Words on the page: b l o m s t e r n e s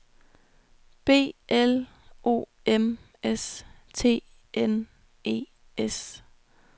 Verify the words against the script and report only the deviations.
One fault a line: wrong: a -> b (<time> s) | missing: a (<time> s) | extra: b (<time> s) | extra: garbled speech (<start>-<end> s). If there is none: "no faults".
missing: e r (4.2 s)